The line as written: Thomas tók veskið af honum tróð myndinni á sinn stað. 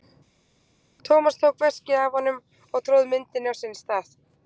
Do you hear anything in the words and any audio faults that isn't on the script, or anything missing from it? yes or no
yes